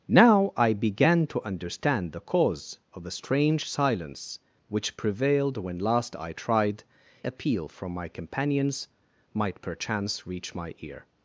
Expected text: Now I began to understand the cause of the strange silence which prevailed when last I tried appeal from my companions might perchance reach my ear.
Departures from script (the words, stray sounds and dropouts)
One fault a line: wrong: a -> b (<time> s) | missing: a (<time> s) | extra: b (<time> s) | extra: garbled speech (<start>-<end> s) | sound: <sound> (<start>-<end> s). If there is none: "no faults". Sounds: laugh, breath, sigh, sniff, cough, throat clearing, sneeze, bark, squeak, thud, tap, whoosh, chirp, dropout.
no faults